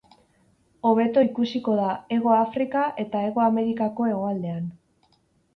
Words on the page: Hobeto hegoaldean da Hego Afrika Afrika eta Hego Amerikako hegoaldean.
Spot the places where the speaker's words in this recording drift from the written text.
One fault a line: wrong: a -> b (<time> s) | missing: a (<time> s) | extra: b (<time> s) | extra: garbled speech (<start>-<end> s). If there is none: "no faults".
wrong: hegoaldean -> ikusiko (1.2 s)
missing: Afrika (2.8 s)